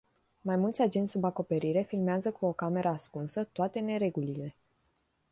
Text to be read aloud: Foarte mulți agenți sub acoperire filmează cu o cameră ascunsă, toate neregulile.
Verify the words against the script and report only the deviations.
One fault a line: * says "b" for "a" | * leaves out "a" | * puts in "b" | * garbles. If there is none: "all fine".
* says "Mai" for "Foarte"